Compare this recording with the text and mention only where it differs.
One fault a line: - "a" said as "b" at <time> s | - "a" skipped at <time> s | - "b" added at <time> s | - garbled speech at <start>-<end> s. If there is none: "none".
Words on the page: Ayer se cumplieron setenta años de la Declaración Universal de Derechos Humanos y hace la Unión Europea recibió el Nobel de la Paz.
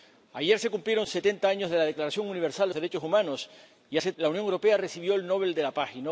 none